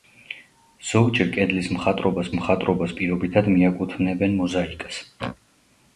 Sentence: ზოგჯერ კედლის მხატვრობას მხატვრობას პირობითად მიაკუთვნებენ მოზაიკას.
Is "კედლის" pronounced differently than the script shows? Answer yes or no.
no